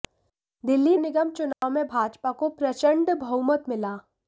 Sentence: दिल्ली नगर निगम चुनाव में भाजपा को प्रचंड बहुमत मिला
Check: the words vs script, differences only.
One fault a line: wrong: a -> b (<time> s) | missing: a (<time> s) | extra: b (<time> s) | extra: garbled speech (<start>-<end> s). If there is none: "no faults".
missing: नगर (0.9 s)